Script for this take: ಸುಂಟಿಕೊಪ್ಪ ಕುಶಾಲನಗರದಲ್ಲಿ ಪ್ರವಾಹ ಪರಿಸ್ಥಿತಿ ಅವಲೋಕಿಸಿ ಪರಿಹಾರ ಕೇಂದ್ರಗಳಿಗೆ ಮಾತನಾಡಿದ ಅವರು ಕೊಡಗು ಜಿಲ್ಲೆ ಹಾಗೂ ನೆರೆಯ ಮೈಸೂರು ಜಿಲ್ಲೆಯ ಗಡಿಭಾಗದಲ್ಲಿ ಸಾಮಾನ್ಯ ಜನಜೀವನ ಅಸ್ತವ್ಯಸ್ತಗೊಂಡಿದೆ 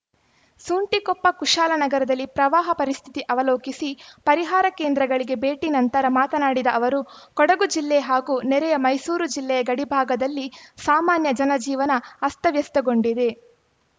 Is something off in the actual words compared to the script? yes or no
yes